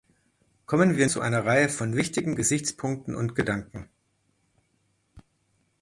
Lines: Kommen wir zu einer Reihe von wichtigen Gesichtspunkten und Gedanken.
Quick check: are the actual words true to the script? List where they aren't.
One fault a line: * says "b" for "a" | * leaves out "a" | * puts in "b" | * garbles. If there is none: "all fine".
all fine